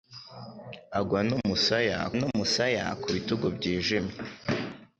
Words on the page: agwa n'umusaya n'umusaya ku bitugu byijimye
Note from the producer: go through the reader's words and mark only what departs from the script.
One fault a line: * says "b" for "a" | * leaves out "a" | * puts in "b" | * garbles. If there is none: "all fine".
all fine